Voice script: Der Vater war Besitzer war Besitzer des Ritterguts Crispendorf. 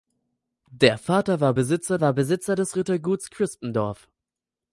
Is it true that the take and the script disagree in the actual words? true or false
false